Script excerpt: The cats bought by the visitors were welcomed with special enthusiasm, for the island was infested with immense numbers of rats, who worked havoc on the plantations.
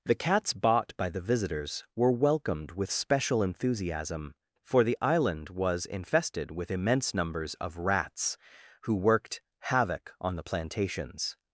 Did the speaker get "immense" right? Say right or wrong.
right